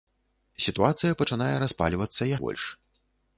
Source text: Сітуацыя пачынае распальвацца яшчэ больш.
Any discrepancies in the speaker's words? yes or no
yes